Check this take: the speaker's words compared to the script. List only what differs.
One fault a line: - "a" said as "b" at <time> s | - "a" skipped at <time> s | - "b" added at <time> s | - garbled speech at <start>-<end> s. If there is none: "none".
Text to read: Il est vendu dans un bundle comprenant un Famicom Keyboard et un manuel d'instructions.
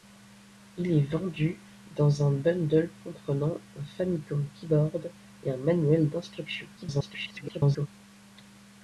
- garbled speech at 6.8-7.9 s